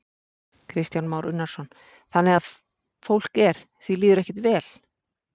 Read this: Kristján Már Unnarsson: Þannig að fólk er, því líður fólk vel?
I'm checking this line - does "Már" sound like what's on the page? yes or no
yes